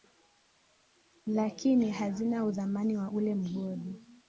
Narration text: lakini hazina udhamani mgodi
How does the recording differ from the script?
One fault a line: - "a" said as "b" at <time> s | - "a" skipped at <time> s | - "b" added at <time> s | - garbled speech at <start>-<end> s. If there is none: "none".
- "wa ule" added at 3.0 s